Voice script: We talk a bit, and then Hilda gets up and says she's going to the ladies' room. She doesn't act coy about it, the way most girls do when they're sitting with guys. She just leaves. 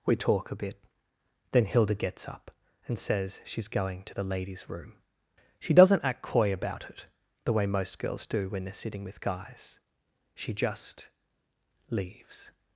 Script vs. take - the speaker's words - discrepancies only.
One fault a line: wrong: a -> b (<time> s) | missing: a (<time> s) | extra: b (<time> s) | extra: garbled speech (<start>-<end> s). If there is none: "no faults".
missing: and (0.8 s)